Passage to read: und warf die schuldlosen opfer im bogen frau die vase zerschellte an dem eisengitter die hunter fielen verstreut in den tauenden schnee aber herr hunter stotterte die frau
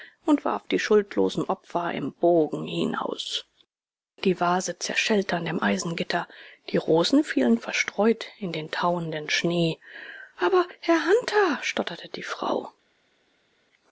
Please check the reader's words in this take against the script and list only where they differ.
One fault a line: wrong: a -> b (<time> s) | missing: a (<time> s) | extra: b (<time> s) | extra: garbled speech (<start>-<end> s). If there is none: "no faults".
wrong: frau -> hinaus (2.7 s)
wrong: hunter -> rosen (6.8 s)